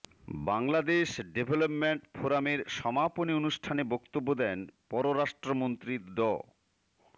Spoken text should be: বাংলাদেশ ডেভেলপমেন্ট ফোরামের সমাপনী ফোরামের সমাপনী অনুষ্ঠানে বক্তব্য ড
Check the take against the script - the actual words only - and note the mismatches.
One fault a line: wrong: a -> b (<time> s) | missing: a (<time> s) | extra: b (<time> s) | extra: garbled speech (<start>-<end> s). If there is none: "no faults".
wrong: ফোরামের সমাপনী অনুষ্ঠানে বক্তব্য -> অনুষ্ঠানে বক্তব্য দেন পররাষ্ট্রমন্ত্রী (3.3 s)